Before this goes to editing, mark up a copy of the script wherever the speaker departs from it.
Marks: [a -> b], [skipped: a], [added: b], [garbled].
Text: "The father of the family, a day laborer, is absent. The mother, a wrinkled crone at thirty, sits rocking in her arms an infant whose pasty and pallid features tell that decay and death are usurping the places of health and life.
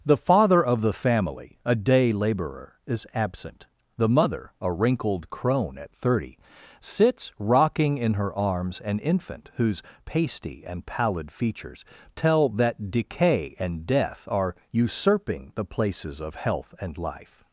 "The father of the family, a day laborer, is absent. The mother, a wrinkled crone at thirty, sits rocking in her arms an infant whose pasty and pallid features tell that decay and death are usurping the places of health and life.